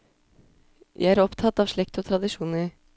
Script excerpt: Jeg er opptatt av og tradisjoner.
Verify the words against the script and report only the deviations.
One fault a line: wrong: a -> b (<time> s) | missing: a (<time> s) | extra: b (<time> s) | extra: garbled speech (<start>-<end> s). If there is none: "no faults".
extra: slekt (1.7 s)